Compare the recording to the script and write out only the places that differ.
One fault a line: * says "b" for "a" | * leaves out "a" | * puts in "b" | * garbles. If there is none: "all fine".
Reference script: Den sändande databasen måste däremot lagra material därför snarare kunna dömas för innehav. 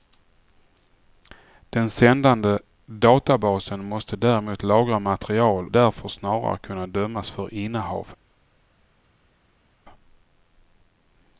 all fine